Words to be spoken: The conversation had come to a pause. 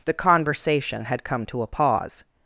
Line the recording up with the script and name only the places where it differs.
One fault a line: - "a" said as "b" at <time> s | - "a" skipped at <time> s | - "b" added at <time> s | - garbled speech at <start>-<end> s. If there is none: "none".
none